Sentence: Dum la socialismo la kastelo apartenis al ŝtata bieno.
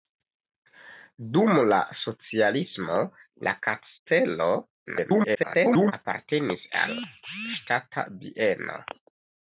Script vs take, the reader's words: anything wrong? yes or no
yes